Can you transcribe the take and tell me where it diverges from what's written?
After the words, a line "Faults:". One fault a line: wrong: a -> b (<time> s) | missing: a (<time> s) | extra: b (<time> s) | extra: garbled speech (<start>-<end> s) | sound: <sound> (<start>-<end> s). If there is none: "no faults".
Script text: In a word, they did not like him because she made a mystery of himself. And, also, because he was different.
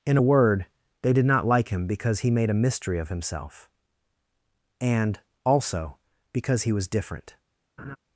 In a word, they did not like him because he made a mystery of himself. And, also, because he was different.
Faults:
wrong: she -> he (2.2 s)
sound: laugh (7.8-8.0 s)